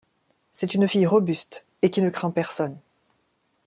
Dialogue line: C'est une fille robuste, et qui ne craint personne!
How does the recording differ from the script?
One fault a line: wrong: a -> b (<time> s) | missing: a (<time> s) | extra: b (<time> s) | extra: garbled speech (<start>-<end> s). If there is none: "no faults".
no faults